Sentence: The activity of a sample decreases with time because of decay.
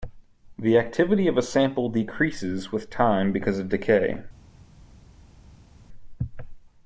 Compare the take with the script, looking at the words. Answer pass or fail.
pass